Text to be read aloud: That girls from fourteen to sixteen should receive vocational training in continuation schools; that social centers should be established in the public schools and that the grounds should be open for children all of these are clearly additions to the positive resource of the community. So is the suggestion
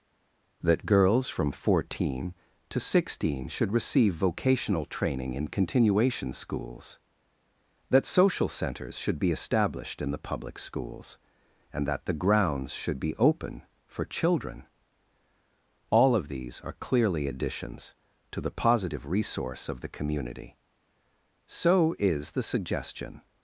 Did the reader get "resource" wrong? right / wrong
right